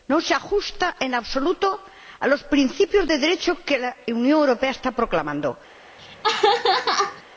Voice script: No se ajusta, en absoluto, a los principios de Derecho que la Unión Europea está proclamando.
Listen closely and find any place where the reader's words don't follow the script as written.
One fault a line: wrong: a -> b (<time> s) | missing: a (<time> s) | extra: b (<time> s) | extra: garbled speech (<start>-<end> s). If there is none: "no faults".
no faults